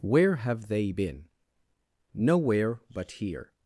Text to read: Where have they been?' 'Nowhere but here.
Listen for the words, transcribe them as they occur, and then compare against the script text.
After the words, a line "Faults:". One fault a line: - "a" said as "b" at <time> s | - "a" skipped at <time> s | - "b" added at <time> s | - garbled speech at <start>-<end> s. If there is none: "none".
Where have they been?' 'Nowhere but here.
Faults:
none